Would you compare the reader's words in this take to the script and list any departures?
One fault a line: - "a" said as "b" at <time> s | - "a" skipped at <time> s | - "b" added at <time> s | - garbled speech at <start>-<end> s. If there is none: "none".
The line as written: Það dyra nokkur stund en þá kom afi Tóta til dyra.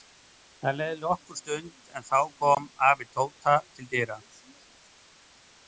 - "dyra" said as "leið" at 0.8 s